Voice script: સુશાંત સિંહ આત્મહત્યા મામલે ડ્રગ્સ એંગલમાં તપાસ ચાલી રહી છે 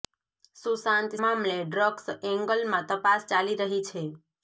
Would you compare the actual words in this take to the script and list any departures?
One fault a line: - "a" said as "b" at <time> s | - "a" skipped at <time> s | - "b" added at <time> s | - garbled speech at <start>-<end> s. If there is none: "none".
- "સિંહ આત્મહત્યા" skipped at 1.1 s